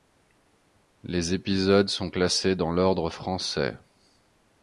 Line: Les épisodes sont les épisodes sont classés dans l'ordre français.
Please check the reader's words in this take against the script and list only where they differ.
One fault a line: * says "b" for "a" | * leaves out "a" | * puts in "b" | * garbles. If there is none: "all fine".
* leaves out "les épisodes sont"